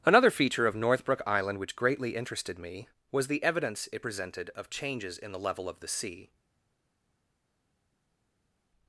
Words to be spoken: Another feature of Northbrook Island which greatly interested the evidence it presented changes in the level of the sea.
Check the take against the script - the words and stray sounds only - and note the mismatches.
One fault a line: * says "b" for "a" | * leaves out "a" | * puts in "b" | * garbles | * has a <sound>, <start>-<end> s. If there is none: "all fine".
* puts in "me was"
* puts in "of"